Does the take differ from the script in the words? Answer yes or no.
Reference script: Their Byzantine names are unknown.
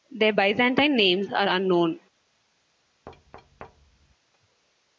no